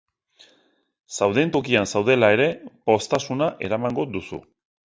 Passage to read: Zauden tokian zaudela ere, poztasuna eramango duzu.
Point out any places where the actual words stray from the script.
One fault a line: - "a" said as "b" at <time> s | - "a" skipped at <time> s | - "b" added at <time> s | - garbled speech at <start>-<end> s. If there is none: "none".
none